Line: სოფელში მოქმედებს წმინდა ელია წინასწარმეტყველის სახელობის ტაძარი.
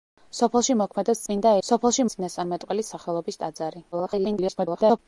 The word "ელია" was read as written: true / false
false